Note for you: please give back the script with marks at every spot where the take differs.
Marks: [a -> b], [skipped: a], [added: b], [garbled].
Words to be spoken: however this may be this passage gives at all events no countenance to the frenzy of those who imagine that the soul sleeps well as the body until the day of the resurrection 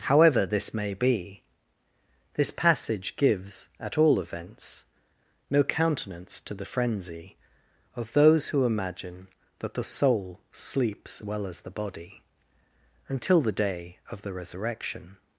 however this may be this passage gives at all events no countenance to the frenzy of those who imagine that the soul sleeps well as the body until the day of the resurrection